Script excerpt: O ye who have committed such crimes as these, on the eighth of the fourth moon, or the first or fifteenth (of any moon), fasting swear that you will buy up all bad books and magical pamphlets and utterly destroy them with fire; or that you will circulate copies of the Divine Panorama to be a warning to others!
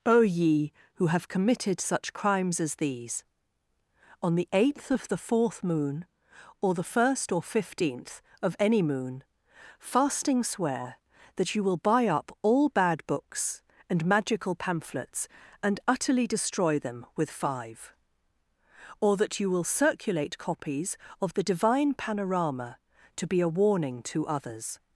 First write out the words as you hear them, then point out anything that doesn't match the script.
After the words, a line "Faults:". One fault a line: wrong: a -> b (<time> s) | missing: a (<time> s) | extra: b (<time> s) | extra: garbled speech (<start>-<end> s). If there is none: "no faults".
O ye who have committed such crimes as these, on the eighth of the fourth moon, or the first or fifteenth (of any moon), fasting swear that you will buy up all bad books and magical pamphlets and utterly destroy them with five; or that you will circulate copies of the Divine Panorama to be a warning to others!
Faults:
wrong: fire -> five (17.3 s)